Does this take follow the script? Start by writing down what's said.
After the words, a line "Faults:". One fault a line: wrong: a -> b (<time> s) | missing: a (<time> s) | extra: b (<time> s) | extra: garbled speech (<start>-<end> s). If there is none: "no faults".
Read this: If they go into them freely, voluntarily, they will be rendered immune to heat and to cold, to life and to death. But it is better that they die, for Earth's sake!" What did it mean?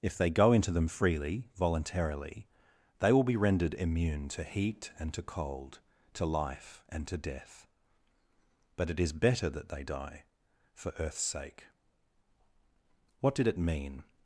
If they go into them freely, voluntarily, they will be rendered immune to heat and to cold, to life and to death. But it is better that they die, for Earth's sake!" What did it mean?
Faults:
no faults